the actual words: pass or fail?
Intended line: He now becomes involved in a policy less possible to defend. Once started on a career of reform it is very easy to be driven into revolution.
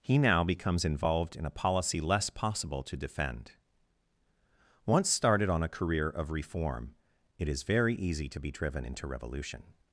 pass